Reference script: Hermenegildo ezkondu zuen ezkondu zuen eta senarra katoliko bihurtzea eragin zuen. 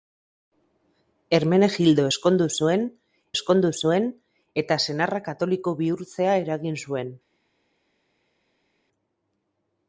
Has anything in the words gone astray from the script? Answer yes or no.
no